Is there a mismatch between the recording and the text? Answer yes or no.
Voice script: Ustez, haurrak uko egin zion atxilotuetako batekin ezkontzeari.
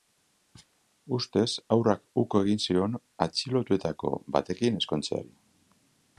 no